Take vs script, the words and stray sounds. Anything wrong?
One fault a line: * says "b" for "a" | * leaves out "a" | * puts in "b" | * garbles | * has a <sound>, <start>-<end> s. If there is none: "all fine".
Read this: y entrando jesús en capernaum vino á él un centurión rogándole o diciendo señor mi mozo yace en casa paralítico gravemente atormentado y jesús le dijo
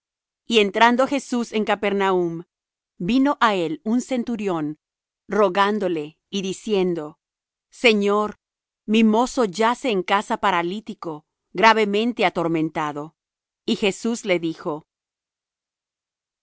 * says "y" for "o"